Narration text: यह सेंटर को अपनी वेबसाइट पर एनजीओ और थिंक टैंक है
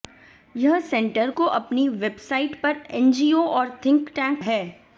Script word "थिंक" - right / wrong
right